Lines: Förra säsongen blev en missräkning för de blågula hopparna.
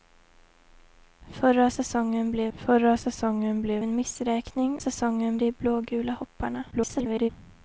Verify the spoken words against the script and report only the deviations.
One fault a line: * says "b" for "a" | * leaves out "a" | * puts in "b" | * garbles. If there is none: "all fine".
* puts in "förra säsongen blev"
* says "säsongen" for "för"
* garbles